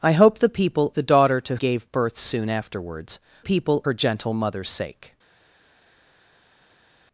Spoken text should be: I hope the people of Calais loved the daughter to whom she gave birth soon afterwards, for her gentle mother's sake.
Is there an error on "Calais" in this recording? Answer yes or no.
yes